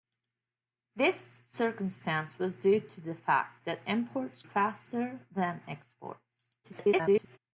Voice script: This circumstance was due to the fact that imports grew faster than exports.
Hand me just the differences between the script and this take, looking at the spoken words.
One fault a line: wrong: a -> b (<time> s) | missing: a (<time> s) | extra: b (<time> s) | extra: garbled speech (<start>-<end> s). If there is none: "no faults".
missing: grew (4.4 s)
extra: garbled speech (6.6-7.4 s)